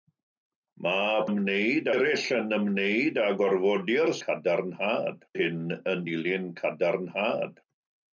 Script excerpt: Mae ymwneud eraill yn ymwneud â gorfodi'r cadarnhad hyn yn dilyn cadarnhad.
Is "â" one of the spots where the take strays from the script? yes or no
no